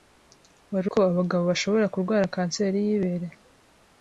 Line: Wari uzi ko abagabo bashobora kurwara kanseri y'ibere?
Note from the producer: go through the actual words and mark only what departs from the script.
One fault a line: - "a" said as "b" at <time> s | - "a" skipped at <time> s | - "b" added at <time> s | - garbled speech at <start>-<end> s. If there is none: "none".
- "uzi" skipped at 0.9 s